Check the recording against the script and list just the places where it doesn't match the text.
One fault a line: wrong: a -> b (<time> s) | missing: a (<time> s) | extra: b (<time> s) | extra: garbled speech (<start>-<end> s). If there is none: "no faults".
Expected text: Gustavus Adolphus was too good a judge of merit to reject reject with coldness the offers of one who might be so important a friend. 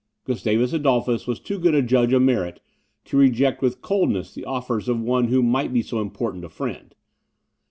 missing: reject (3.6 s)